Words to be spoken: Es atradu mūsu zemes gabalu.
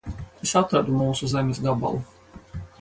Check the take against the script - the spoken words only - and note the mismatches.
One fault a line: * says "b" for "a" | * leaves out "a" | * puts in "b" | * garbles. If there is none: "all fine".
all fine